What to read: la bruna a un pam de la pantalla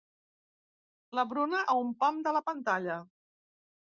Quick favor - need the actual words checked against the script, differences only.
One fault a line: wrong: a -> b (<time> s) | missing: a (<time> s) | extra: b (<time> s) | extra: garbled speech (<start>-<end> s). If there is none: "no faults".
no faults